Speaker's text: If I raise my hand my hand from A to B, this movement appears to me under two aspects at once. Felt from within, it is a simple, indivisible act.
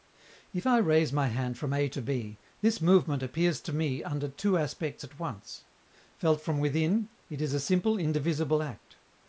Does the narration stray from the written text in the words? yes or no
yes